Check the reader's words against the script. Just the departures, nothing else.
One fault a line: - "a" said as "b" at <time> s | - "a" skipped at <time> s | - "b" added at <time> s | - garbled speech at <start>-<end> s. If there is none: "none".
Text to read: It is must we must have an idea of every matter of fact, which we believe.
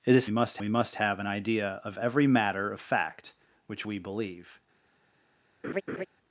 none